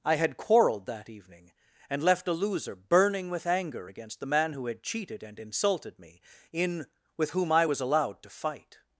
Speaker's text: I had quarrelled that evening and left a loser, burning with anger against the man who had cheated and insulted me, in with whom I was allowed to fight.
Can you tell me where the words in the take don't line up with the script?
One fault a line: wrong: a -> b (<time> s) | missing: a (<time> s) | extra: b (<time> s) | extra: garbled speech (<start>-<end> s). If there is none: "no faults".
no faults